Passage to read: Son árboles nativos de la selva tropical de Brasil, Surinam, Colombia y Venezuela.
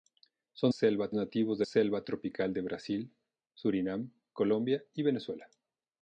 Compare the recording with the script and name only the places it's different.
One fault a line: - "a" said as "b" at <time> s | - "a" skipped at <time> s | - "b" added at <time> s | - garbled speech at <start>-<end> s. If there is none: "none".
- "árboles" said as "selva" at 0.7 s
- "la" skipped at 1.7 s